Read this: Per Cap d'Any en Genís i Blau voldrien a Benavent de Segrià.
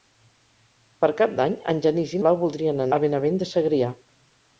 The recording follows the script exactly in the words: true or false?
true